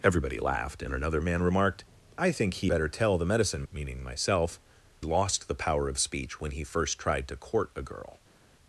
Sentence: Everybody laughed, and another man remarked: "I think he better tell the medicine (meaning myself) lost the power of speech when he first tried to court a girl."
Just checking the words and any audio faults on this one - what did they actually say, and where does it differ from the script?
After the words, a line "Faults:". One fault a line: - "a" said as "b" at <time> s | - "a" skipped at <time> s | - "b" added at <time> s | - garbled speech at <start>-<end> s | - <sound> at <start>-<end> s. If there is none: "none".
Everybody laughed, and another man remarked: "I think he better tell the medicine (meaning myself) lost the power of speech when he first tried to court a girl."
Faults:
none